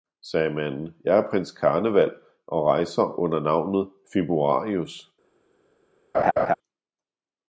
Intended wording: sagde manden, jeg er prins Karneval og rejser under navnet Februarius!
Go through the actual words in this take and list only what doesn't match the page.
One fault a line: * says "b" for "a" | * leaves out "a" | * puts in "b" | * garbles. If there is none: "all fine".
all fine